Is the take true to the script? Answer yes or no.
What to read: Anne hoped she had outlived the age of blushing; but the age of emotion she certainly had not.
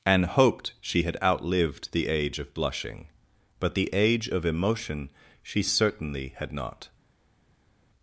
no